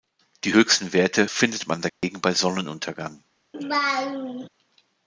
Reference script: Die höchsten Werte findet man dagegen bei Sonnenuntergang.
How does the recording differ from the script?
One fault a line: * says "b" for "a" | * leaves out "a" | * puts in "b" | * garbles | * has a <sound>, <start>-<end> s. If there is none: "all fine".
* has a dropout, 1.9-2.0 s
* has a laugh, 3.5-4.5 s